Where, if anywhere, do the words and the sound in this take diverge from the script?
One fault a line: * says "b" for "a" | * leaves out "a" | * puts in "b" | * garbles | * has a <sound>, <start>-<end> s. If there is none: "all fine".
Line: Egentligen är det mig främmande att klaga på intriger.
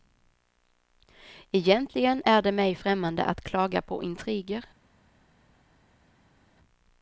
all fine